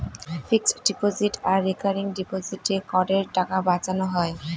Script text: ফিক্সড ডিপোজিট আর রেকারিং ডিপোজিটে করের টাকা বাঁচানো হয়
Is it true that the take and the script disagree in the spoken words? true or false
false